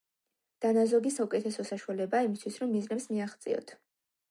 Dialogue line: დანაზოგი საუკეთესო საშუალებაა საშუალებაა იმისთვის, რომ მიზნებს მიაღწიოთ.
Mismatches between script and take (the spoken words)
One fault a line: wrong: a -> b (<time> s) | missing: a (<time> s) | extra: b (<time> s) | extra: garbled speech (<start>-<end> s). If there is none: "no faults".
missing: საშუალებაა (2.3 s)